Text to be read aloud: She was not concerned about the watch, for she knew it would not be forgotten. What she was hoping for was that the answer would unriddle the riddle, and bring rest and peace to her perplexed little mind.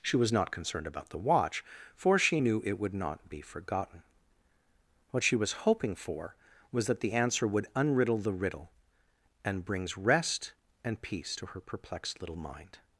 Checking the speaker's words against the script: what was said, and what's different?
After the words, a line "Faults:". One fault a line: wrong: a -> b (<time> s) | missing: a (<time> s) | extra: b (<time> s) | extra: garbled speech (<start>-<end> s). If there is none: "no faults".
She was not concerned about the watch, for she knew it would not be forgotten. What she was hoping for was that the answer would unriddle the riddle, and brings rest and peace to her perplexed little mind.
Faults:
wrong: bring -> brings (9.6 s)